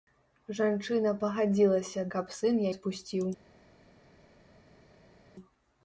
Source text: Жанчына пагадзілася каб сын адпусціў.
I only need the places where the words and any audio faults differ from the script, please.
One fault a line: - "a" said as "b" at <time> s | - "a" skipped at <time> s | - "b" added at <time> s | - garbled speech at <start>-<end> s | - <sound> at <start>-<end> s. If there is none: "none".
none